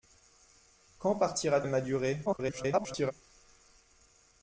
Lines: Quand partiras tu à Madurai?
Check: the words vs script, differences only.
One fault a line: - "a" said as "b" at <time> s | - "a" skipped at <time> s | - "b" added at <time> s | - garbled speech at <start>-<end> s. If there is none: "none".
- "tu" skipped at 1.6 s
- garbled speech at 2.3-3.1 s